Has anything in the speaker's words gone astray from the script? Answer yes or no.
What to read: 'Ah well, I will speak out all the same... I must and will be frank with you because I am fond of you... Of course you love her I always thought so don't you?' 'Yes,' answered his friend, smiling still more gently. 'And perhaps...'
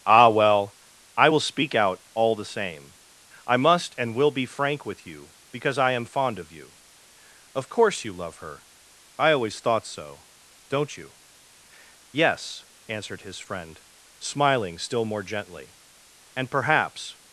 no